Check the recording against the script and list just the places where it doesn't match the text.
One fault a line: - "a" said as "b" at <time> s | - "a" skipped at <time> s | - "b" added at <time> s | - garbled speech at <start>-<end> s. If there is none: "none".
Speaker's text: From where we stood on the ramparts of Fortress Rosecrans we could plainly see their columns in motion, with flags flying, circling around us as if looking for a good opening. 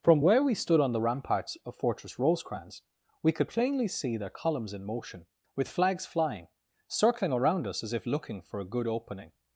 none